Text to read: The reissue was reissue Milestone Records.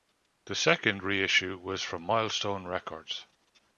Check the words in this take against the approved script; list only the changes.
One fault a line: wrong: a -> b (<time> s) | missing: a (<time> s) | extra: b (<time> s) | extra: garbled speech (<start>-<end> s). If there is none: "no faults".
extra: second (0.6 s)
wrong: reissue -> from (1.8 s)